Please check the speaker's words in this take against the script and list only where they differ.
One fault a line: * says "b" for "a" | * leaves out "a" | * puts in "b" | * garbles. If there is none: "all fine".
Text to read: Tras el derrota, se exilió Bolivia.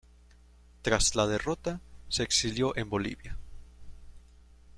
* says "la" for "el"
* puts in "en"